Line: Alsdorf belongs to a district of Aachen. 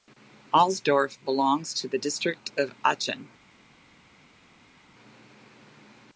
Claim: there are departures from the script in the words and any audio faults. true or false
true